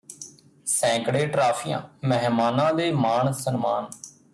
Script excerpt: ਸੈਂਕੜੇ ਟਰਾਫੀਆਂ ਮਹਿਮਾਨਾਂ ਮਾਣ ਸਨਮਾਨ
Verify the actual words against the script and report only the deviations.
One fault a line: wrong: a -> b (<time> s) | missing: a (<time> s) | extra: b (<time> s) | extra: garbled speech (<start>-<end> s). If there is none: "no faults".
extra: ਦੇ (2.7 s)